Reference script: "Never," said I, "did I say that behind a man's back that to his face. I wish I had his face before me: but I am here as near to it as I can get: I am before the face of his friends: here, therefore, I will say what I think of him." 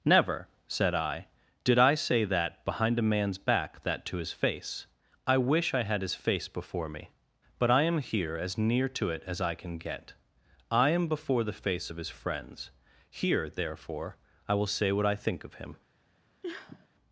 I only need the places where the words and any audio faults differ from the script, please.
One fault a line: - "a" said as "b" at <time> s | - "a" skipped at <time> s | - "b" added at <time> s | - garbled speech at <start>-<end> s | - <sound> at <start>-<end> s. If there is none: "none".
- sniff at 16.4-16.9 s